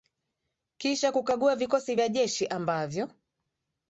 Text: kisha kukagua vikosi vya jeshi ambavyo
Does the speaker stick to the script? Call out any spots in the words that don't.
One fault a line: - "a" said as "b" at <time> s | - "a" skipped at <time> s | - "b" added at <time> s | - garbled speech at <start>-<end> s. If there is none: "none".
none